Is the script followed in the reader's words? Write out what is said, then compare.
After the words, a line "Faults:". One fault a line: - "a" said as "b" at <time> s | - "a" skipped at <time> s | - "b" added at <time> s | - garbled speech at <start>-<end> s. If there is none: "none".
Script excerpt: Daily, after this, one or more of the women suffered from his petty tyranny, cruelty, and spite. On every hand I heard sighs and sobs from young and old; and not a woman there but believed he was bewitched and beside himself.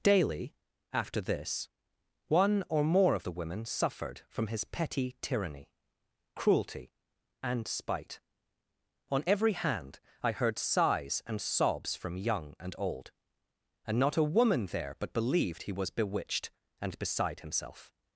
Daily, after this, one or more of the women suffered from his petty tyranny, cruelty, and spite. On every hand I heard sighs and sobs from young and old; and not a woman there but believed he was bewitched and beside himself.
Faults:
none